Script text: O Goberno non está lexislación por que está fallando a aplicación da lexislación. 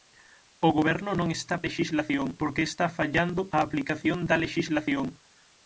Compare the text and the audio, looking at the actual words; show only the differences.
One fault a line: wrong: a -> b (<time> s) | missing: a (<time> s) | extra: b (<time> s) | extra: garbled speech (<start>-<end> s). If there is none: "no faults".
no faults